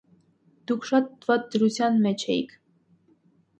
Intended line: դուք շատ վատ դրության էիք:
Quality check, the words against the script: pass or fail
fail